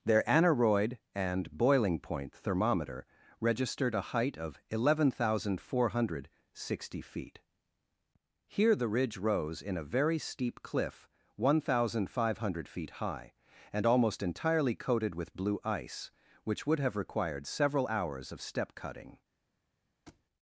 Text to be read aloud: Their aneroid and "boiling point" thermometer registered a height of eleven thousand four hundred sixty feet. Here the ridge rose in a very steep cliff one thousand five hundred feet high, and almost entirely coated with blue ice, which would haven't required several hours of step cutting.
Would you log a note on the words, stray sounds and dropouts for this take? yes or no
yes